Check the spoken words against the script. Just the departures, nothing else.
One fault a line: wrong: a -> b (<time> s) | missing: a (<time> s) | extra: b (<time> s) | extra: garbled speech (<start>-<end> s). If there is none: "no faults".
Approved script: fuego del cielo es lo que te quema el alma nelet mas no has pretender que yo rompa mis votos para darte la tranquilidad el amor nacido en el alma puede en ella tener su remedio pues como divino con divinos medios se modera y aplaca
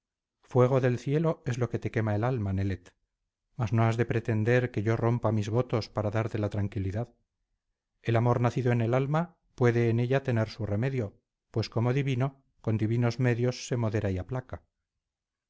extra: de (4.0 s)